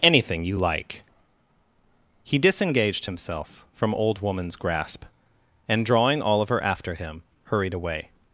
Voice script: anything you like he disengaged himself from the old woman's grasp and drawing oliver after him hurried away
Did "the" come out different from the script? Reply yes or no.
yes